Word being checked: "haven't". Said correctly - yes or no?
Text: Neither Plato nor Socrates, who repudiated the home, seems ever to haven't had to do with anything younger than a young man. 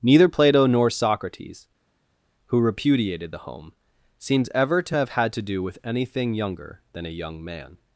no